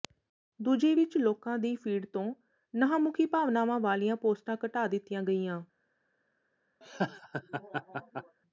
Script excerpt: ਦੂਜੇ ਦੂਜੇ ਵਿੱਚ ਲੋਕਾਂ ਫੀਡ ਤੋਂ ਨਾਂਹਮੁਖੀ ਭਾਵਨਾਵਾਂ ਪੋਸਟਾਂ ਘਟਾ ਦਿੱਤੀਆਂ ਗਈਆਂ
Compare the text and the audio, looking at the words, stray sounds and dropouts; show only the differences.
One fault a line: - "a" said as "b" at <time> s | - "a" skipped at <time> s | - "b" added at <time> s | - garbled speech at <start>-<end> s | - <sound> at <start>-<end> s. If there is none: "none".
- "ਦੂਜੇ" skipped at 0.9 s
- "ਦੀ" added at 1.6 s
- "ਵਾਲੀਆਂ" added at 3.8 s
- laugh at 6.8-8.4 s